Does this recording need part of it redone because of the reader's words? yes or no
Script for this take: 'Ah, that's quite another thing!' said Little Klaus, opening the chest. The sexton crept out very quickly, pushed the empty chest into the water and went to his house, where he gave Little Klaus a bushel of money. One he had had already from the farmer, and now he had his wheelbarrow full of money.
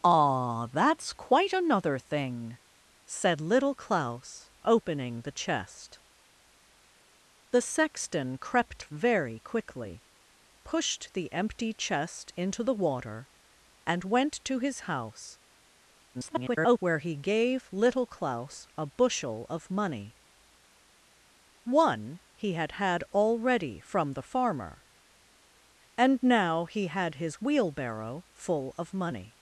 yes